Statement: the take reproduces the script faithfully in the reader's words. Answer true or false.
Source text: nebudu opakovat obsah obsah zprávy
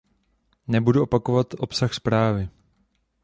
false